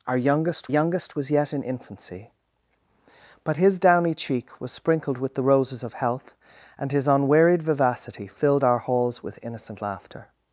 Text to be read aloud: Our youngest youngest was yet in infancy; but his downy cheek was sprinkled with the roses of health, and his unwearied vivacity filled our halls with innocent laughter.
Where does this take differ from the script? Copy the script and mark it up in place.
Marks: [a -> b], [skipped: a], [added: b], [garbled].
Our youngest youngest was yet in infancy; but his downy cheek was sprinkled with the roses of health, and his unwearied vivacity filled our halls with innocent laughter.